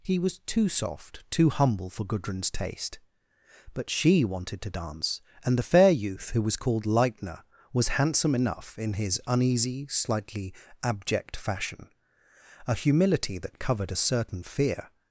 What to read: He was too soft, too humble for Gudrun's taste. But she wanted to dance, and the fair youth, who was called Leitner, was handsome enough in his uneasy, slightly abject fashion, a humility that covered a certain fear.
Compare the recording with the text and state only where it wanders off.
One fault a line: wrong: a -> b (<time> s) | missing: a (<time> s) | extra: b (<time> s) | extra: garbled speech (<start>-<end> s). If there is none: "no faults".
no faults